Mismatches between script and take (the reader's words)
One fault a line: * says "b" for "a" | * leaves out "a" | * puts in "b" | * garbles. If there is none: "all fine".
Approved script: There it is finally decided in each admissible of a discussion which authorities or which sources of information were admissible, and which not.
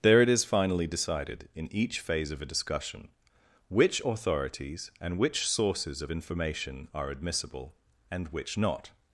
* says "phase" for "admissible"
* says "and" for "or"
* says "are" for "were"